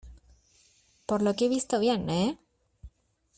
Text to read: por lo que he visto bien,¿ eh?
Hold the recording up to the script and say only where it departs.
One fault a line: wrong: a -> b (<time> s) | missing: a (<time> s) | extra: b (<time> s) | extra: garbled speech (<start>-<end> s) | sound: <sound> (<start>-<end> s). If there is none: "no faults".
no faults